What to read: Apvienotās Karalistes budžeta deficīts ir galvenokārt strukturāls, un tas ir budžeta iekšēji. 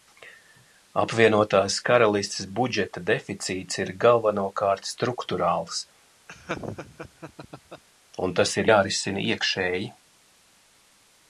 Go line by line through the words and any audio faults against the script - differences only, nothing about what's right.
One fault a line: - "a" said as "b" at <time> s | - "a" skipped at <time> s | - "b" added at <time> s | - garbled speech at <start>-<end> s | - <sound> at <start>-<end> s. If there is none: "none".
- laugh at 6.3-7.8 s
- "budžeta" said as "jārisina" at 8.7 s